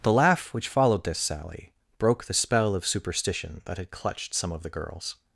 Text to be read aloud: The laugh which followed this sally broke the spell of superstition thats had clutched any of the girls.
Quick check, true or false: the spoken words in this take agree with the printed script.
false